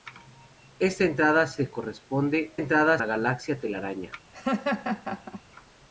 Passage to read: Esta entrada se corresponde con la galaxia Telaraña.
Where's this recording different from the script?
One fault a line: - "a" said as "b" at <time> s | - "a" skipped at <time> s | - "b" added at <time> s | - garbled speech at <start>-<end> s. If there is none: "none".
- "con" said as "entrada" at 2.5 s